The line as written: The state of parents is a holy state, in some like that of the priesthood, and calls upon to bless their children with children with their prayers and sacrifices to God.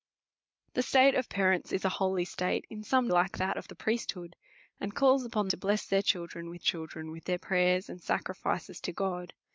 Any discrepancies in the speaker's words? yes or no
no